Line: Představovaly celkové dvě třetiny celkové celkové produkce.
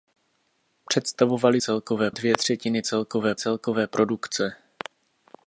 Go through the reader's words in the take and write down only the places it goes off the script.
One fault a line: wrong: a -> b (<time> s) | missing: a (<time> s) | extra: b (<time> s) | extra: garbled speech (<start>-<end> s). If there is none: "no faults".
no faults